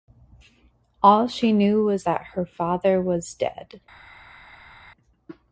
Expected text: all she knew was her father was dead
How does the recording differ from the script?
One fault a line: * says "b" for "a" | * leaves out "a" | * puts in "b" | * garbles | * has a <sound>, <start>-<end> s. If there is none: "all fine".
* puts in "that"